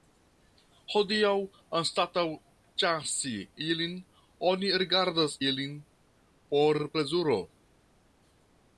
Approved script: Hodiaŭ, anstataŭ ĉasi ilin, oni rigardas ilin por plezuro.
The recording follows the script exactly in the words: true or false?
true